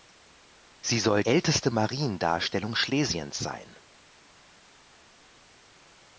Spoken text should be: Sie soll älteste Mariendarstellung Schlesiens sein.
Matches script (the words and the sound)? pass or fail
pass